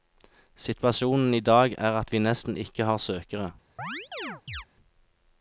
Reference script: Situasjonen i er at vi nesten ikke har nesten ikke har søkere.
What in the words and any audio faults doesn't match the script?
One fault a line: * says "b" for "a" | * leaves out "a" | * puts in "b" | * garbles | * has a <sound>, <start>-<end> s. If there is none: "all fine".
* puts in "dag"
* leaves out "nesten ikke har"
* has a chirp, 3.8-4.7 s